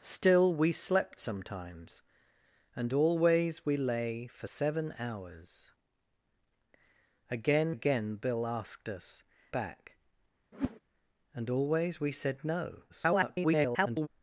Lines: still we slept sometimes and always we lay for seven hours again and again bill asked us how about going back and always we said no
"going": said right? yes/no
no